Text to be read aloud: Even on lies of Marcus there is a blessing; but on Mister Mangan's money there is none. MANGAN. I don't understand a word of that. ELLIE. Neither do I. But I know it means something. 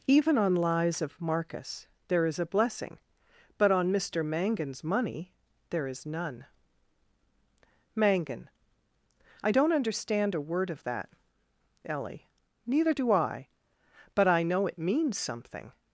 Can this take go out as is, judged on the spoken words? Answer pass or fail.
pass